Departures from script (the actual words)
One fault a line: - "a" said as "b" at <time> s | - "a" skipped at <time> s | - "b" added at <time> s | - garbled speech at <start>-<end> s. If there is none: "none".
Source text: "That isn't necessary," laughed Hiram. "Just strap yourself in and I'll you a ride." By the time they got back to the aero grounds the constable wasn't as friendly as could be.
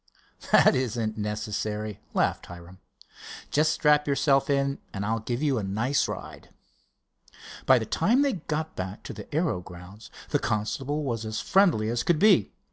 - "give" added at 5.2 s
- "nice" added at 5.6 s
- "wasn't" said as "was" at 11.0 s